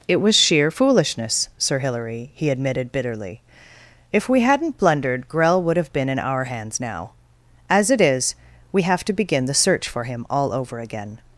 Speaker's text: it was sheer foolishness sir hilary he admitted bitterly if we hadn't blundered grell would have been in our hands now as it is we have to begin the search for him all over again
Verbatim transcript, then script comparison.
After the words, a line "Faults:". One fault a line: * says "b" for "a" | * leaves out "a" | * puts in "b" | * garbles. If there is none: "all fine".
it was sheer foolishness sir hilary he admitted bitterly if we hadn't blundered grell would have been in our hands now as it is we have to begin the search for him all over again
Faults:
all fine